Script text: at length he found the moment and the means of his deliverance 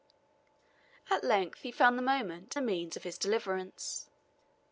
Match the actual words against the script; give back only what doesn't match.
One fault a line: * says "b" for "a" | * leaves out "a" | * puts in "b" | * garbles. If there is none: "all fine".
* leaves out "and"